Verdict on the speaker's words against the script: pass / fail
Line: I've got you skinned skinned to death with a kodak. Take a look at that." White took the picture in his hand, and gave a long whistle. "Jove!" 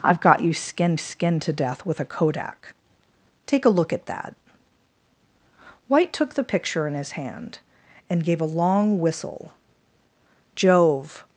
pass